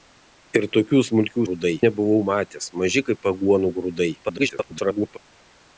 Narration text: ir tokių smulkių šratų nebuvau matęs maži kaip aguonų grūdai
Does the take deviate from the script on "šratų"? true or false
true